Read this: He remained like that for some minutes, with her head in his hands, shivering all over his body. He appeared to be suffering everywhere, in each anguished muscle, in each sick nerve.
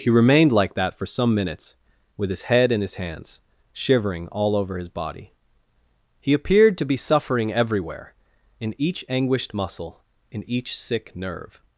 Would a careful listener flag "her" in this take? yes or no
yes